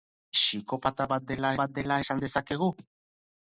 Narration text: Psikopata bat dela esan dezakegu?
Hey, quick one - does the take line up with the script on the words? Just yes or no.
no